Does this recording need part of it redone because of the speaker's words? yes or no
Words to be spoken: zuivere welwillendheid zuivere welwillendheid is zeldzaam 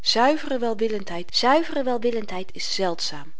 no